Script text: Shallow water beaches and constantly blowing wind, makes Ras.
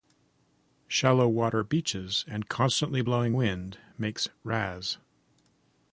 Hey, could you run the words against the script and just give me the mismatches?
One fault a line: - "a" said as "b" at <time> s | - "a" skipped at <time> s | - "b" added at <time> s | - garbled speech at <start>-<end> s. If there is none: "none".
none